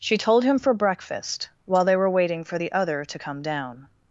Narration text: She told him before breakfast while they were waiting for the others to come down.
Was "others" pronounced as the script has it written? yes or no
no